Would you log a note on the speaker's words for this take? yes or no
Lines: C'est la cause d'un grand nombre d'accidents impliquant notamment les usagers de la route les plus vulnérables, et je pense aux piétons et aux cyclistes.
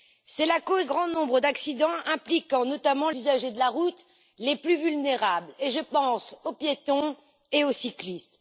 yes